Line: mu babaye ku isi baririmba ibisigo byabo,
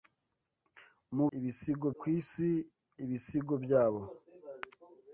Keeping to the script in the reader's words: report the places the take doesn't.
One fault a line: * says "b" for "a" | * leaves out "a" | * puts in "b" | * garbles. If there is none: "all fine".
* says "ibisigo" for "babaye"
* leaves out "baririmba"